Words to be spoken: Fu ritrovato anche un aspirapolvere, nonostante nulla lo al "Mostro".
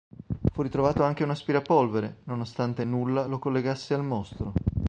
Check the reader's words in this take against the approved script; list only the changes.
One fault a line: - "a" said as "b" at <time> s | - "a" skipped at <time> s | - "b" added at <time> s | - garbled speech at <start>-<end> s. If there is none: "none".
- "collegasse" added at 3.4 s